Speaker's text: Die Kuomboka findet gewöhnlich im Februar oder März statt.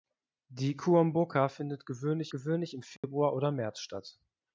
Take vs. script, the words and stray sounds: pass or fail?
fail